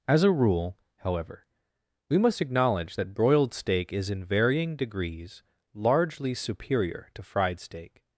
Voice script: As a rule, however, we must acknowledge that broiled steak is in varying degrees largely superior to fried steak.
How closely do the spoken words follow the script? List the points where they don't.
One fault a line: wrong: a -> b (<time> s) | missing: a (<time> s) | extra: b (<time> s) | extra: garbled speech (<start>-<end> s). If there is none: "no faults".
no faults